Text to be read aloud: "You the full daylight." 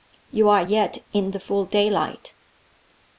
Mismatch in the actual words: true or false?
true